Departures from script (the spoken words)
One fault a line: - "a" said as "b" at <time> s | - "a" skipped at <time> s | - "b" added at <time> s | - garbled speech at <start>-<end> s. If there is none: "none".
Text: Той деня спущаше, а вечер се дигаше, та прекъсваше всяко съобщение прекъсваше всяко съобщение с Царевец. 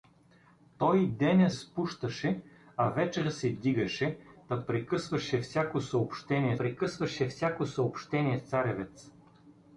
none